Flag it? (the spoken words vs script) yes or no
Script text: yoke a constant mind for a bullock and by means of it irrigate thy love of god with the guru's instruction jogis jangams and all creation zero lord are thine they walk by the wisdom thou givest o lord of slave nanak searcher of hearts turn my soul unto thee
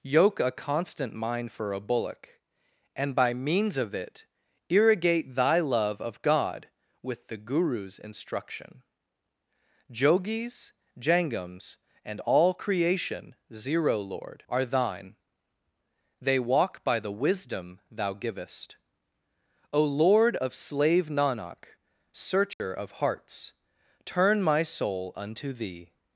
no